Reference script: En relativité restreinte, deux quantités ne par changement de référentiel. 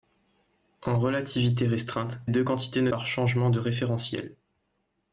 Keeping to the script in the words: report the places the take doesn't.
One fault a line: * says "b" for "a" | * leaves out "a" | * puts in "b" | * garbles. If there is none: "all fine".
all fine